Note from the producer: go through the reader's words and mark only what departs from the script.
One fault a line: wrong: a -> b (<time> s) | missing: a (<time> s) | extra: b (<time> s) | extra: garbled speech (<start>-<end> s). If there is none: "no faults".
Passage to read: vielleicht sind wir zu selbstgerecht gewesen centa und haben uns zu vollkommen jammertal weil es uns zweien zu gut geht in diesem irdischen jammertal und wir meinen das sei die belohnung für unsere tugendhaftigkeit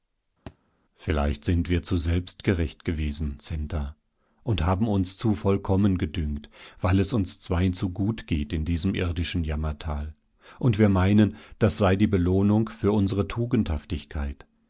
wrong: jammertal -> gedünkt (6.0 s)